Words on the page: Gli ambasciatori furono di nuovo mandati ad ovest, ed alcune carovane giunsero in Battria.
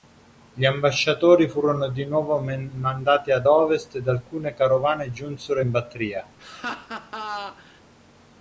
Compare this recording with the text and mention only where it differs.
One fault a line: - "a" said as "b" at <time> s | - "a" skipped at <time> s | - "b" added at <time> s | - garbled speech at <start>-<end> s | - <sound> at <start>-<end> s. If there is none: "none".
- laugh at 6.4-7.8 s